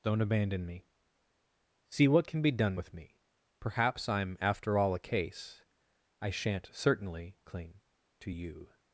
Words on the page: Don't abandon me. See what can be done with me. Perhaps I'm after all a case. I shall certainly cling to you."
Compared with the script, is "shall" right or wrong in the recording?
wrong